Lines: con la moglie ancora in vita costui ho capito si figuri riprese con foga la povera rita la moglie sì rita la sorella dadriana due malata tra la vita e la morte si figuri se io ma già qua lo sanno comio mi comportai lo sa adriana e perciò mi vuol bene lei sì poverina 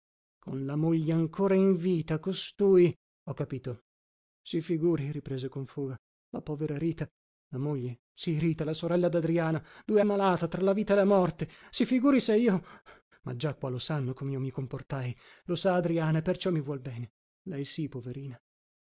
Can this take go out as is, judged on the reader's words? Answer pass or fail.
pass